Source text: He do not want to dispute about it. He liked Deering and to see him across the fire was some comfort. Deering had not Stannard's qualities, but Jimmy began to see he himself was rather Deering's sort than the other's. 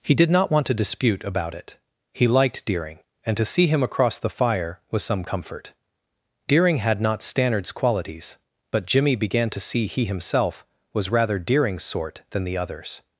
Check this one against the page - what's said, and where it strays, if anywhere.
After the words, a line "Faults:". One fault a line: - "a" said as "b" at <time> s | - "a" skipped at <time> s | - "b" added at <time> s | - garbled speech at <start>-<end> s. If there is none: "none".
He did not want to dispute about it. He liked Deering and to see him across the fire was some comfort. Deering had not Stannard's qualities, but Jimmy began to see he himself was rather Deering's sort than the other's.
Faults:
- "do" said as "did" at 0.1 s